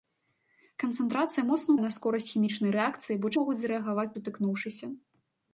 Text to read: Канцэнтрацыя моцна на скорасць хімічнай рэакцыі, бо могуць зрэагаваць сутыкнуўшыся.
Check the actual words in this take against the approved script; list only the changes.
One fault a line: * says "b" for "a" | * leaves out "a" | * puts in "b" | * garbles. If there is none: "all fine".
all fine